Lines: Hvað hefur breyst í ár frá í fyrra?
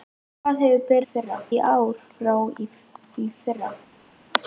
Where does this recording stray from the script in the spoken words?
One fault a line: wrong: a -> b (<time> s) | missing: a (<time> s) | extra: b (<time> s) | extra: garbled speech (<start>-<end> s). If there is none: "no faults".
wrong: breyst -> fyrra (1.1 s)